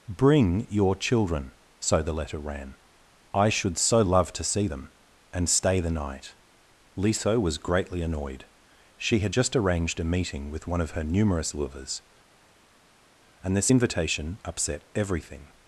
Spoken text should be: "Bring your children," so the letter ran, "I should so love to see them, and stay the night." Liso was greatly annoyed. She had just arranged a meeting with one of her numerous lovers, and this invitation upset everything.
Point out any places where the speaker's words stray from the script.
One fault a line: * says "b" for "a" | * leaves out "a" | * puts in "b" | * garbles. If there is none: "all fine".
all fine